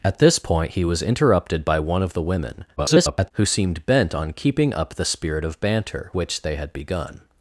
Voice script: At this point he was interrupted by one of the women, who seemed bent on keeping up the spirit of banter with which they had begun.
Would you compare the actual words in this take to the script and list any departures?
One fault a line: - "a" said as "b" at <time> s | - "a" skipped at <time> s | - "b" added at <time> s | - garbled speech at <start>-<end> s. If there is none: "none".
- garbled speech at 2.8-3.3 s
- "with" skipped at 6.1 s